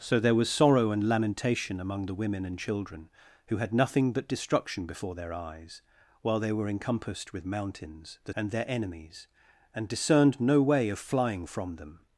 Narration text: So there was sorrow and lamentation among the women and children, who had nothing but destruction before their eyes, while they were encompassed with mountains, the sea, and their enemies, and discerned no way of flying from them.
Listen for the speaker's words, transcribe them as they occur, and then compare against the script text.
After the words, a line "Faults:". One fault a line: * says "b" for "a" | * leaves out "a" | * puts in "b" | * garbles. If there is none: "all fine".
So there was sorrow and lamentation among the women and children, who had nothing but destruction before their eyes, while they were encompassed with mountains, the and their enemies, and discerned no way of flying from them.
Faults:
* leaves out "sea"